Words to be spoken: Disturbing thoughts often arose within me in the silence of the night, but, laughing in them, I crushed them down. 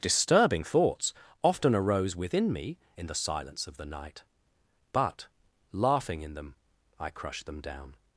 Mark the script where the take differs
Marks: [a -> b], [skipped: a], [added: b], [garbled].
Disturbing thoughts often arose within me in the silence of the night, but, laughing in them, I crushed them down.